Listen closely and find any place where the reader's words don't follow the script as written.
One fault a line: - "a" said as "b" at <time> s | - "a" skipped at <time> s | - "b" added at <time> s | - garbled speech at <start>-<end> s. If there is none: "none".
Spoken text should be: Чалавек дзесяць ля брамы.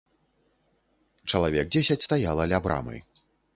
- "стаяла" added at 2.0 s